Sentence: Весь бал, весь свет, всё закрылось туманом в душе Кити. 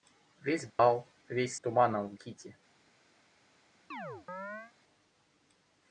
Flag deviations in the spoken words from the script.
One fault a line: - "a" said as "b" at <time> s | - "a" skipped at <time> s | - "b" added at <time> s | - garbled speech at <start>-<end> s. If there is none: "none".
- "свет всё закрылось" skipped at 1.6 s
- "душе" skipped at 2.1 s